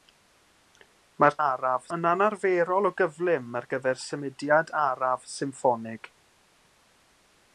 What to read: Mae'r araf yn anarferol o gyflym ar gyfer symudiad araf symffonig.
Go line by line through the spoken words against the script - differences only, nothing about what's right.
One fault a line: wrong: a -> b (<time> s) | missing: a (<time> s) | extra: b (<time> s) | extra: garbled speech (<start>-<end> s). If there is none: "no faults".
no faults